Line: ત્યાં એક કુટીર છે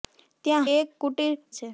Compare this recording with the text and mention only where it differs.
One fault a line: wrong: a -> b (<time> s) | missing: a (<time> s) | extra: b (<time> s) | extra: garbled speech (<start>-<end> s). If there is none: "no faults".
no faults